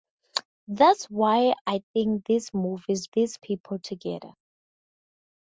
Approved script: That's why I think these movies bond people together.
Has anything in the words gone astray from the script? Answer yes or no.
yes